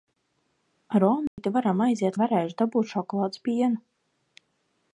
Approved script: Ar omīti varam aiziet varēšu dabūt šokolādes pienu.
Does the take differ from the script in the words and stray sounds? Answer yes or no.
yes